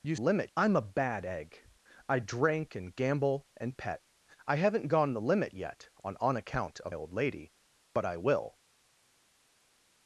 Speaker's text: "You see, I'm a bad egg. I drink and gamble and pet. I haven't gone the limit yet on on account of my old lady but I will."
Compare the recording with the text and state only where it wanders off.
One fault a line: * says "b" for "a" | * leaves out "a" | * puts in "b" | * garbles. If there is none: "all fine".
* says "limit" for "see"
* leaves out "my"